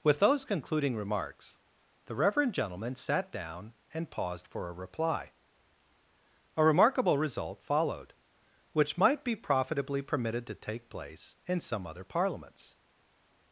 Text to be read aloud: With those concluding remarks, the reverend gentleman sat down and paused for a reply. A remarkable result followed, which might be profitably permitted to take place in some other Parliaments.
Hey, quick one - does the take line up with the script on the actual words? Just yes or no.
yes